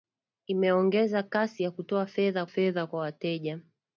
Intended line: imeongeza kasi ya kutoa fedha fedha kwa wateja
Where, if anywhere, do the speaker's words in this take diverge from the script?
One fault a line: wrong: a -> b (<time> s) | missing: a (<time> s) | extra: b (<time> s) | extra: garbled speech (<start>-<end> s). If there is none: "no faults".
no faults